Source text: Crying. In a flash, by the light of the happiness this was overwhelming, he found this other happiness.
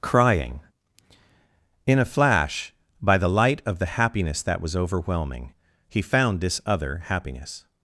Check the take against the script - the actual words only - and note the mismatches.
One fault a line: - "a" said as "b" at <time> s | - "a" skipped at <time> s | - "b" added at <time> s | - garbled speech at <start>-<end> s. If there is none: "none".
- "this" said as "that" at 4.4 s